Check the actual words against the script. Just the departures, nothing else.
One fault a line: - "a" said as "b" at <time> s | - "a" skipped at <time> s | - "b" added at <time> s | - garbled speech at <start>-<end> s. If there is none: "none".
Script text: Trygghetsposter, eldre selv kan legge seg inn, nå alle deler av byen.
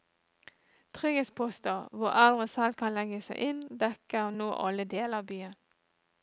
- "hvor" added at 1.9 s
- "dekker" added at 3.9 s